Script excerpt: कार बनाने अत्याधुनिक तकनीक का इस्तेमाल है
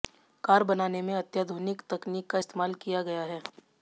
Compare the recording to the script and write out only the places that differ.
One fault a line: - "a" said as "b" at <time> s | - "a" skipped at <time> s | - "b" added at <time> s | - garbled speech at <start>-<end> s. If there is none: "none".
- "में" added at 1.0 s
- "किया गया" added at 2.8 s